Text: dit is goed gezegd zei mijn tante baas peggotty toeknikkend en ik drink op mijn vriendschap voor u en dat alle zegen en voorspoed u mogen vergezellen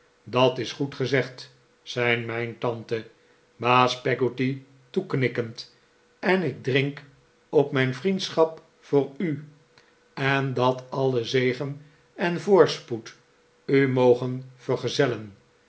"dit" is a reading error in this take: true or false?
true